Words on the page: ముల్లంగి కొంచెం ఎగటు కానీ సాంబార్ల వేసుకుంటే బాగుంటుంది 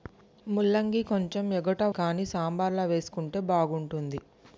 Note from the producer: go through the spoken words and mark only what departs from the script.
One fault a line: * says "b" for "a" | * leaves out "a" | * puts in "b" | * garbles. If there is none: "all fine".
all fine